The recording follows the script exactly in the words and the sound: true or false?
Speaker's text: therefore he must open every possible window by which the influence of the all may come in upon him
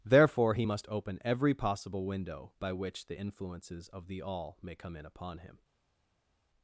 false